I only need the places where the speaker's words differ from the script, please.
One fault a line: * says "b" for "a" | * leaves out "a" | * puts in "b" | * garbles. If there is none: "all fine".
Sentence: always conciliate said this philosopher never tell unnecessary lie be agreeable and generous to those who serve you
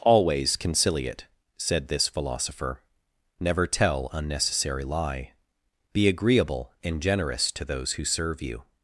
all fine